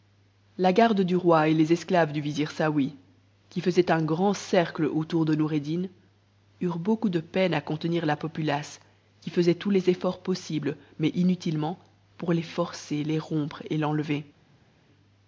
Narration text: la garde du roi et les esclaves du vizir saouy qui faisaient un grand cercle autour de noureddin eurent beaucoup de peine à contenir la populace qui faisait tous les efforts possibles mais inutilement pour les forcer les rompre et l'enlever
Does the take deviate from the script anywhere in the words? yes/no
no